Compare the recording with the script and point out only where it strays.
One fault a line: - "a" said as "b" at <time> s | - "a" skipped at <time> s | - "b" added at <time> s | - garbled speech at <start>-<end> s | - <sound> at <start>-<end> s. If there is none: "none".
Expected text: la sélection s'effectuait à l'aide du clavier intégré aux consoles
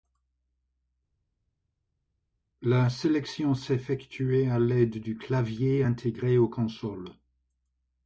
none